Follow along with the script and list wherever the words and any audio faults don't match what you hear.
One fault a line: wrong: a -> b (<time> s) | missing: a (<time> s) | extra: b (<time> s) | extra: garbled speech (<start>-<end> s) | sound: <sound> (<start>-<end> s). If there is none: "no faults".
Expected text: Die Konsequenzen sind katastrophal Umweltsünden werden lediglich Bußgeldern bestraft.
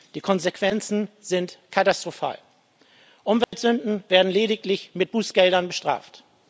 sound: dropout (3.4-3.5 s)
extra: mit (5.0 s)